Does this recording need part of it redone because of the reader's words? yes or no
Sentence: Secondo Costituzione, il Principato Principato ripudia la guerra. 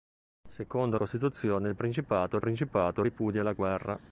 no